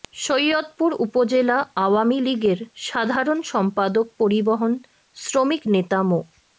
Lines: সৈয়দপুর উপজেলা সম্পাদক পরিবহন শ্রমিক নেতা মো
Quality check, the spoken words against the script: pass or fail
fail